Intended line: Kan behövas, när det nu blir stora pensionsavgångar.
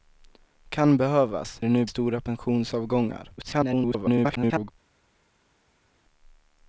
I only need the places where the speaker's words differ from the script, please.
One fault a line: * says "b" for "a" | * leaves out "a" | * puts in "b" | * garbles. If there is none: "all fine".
* leaves out "när"
* leaves out "blir"
* garbles